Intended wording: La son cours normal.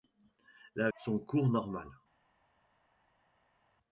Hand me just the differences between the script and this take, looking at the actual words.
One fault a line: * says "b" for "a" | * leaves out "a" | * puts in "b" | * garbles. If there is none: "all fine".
all fine